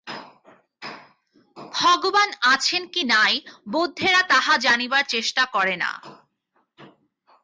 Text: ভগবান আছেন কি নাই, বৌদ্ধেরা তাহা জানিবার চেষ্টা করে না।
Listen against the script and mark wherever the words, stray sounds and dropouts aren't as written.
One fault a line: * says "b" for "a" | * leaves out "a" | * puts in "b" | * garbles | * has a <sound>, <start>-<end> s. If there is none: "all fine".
all fine